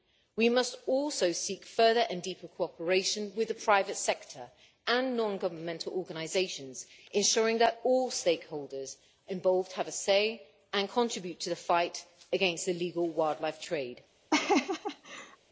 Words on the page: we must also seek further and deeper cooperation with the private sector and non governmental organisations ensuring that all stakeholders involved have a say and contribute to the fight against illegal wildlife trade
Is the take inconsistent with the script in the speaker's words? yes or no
no